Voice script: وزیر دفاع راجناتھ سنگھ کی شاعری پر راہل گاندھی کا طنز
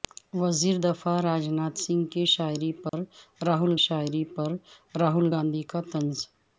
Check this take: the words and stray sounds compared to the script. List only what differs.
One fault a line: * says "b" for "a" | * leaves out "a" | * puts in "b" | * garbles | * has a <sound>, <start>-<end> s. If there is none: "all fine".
* has a dropout, 2.9-2.9 s
* puts in "شاعری پر راہل"